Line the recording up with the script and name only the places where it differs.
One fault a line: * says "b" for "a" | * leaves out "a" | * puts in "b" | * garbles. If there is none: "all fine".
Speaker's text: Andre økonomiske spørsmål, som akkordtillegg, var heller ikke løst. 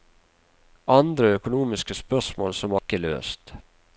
* leaves out "akkordtillegg var heller"